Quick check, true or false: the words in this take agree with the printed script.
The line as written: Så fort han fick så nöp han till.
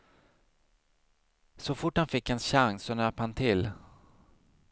false